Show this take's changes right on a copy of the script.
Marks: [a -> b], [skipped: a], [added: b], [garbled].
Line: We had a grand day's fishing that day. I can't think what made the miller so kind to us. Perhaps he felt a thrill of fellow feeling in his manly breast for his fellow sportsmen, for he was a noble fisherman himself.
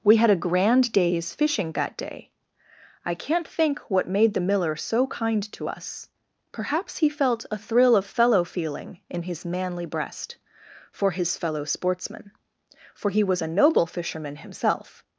We had a grand day's fishing that day. I can't think what made the miller so kind to us. Perhaps he felt a thrill of fellow feeling in his manly breast for his fellow sportsmen, for he was a noble fisherman himself.